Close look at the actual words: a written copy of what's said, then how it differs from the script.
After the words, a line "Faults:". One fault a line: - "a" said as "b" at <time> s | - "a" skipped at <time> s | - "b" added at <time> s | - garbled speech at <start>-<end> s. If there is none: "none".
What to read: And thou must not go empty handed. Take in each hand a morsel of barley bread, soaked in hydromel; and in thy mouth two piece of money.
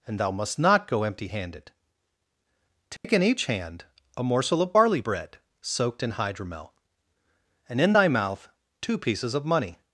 And thou must not go empty handed. Take in each hand a morsel of barley bread, soaked in hydromel; and in thy mouth two pieces of money.
Faults:
- "piece" said as "pieces" at 9.0 s